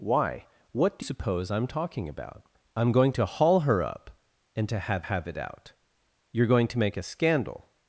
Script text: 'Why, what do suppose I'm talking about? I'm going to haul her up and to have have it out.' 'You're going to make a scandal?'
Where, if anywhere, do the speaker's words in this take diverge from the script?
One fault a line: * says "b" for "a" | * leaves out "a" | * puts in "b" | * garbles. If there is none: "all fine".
all fine